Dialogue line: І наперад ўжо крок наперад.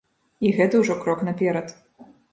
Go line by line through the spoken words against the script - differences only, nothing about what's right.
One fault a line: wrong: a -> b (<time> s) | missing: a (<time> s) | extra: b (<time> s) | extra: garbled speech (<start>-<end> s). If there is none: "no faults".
wrong: наперад -> гэта (0.6 s)